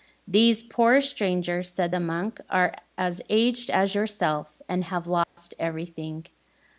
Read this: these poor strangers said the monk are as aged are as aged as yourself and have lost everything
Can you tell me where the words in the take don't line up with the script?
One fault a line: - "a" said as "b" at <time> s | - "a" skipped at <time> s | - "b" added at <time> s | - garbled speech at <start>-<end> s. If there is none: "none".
- "are as aged" skipped at 3.7 s